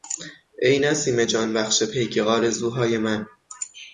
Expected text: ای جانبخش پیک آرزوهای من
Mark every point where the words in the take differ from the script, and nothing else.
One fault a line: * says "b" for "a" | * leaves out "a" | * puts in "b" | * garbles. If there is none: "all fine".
* puts in "نسیم"